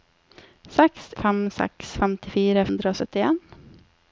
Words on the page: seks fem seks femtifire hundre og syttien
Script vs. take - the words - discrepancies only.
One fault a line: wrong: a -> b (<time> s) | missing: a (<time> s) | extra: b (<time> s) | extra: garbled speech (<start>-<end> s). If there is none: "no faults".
no faults